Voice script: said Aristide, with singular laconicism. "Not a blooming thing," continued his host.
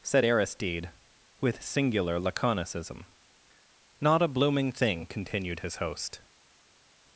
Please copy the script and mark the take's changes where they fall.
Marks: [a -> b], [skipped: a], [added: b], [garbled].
said Aristide, with singular laconicism. "Not a blooming thing," continued his host.